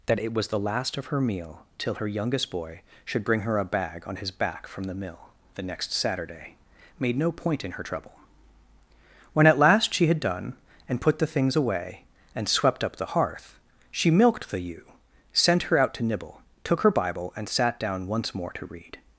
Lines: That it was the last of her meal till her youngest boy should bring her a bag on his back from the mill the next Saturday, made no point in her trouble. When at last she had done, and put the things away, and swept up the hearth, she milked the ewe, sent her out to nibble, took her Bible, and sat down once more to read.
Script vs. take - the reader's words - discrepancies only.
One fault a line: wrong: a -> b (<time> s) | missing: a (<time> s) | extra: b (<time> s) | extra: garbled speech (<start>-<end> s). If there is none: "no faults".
no faults